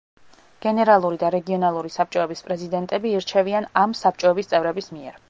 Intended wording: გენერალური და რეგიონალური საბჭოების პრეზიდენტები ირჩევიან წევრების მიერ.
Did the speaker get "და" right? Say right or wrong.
right